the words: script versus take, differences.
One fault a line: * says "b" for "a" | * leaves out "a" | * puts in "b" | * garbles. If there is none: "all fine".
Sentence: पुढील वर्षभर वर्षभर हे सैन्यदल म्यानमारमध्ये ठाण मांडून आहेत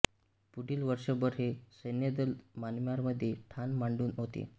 * leaves out "वर्षभर"
* says "होते" for "आहेत"